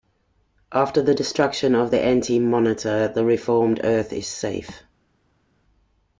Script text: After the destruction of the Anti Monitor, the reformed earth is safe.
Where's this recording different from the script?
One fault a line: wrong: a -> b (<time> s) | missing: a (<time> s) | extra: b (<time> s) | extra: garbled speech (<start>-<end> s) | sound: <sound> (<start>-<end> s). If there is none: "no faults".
no faults